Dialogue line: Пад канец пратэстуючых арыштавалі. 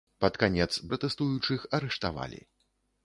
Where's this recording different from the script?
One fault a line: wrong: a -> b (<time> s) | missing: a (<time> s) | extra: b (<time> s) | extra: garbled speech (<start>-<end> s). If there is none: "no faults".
no faults